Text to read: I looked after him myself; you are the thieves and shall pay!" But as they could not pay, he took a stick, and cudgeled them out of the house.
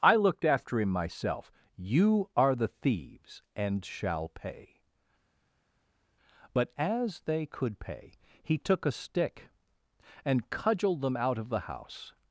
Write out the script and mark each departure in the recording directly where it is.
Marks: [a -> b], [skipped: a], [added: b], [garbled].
I looked after him myself; you are the thieves and shall pay!" But as they could [skipped: not] pay, he took a stick, and cudgeled them out of the house.